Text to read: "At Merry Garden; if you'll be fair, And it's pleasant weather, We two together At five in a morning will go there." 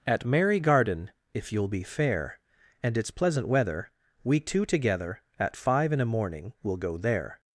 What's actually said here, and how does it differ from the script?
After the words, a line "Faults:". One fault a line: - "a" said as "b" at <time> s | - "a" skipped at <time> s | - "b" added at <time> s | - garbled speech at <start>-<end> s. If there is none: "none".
"At Merry Garden; if you'll be fair, And it's pleasant weather, We two together At five in a morning will go there."
Faults:
none